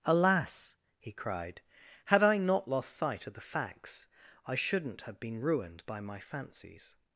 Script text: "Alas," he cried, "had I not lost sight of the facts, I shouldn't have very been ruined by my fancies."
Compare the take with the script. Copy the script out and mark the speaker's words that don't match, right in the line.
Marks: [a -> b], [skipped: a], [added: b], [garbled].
"Alas," he cried, "had I not lost sight of the facts, I shouldn't have [skipped: very] been ruined by my fancies."